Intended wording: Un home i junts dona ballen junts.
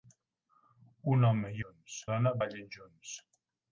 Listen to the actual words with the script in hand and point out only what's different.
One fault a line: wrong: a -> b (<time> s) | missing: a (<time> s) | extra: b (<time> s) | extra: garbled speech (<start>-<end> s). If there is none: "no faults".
no faults